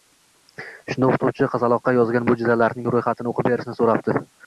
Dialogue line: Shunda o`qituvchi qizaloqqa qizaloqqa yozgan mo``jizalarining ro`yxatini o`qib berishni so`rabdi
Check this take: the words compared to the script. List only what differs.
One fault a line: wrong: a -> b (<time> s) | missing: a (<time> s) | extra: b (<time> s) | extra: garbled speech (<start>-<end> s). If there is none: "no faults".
missing: qizaloqqa (1.9 s)